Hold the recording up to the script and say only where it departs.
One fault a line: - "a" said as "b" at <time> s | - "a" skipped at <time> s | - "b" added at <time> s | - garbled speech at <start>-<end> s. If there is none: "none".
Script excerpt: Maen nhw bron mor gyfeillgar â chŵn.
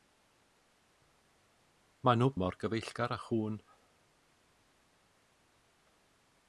- "bron" skipped at 2.3 s